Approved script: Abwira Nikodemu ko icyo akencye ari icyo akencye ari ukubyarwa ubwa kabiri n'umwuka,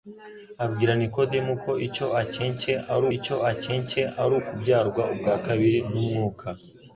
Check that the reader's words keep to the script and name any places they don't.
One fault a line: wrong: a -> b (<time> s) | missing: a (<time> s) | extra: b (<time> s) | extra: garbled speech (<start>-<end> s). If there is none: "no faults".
no faults